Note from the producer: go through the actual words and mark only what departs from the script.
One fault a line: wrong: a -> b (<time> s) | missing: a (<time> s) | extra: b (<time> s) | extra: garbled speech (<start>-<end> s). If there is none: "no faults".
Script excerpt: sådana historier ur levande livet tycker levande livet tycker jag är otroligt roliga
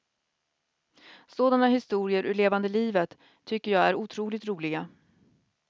missing: levande livet tycker (3.7 s)